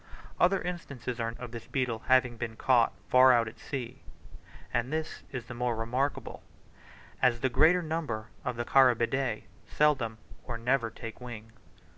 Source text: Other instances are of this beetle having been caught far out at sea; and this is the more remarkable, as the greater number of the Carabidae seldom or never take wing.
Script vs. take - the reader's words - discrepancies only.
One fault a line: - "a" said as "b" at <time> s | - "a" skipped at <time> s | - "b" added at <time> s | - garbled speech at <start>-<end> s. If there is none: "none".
none